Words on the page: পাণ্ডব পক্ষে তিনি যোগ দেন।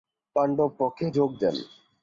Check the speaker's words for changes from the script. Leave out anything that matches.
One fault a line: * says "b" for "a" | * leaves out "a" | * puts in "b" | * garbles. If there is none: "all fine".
* leaves out "তিনি"